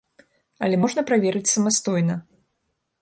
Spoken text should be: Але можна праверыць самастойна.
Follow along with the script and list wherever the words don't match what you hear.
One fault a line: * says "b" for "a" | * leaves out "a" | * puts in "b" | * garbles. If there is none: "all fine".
all fine